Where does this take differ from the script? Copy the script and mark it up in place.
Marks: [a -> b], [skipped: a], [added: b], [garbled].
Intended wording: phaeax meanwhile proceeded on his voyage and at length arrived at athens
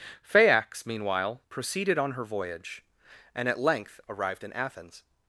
phaeax meanwhile proceeded on [his -> her] voyage and at length arrived [at -> in] athens